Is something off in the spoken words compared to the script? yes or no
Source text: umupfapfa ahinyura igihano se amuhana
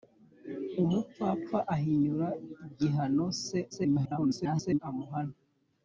yes